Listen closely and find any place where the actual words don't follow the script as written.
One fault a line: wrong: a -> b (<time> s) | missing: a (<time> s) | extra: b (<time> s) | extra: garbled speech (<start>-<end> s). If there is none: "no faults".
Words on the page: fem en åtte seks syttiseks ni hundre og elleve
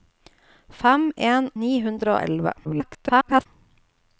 missing: åtte seks syttiseks (1.5 s)
extra: garbled speech (2.6-3.5 s)